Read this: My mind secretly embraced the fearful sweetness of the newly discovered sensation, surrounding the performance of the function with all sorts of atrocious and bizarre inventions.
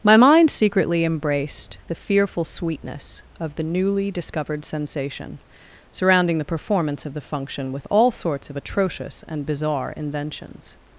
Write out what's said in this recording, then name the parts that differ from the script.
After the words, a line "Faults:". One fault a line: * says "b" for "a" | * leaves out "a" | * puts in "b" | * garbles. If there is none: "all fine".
My mind secretly embraced the fearful sweetness of the newly discovered sensation, surrounding the performance of the function with all sorts of atrocious and bizarre inventions.
Faults:
all fine